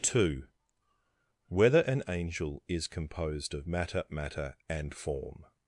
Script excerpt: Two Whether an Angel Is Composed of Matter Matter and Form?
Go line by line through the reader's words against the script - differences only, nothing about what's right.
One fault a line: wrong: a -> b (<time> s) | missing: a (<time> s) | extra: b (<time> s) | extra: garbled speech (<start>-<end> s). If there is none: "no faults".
no faults